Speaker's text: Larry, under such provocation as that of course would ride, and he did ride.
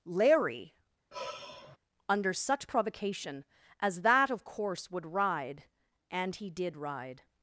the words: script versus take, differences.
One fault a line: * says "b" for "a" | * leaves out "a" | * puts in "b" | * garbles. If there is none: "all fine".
all fine